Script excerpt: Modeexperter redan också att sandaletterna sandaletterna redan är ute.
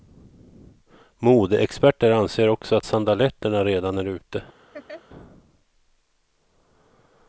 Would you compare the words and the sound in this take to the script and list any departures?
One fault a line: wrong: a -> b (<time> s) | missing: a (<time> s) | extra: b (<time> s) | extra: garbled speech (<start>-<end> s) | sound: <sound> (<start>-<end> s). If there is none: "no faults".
wrong: redan -> anser (2.1 s)
missing: sandaletterna (3.6 s)
sound: laugh (4.7-5.0 s)